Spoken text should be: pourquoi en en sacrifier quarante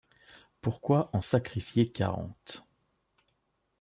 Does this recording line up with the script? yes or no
no